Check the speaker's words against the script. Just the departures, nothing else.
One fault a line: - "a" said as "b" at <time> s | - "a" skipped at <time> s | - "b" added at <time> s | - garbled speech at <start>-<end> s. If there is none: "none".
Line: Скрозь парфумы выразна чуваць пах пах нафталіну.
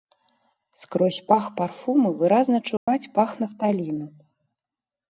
- "пах" added at 1.3 s
- "пах" skipped at 3.3 s